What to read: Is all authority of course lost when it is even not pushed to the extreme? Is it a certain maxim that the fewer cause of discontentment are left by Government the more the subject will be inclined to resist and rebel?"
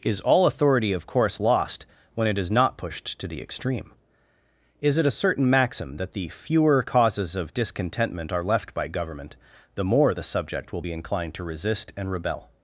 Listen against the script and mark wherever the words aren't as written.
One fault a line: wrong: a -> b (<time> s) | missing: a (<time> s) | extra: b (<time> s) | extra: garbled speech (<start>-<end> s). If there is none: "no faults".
missing: even (2.5 s)
wrong: cause -> causes (6.8 s)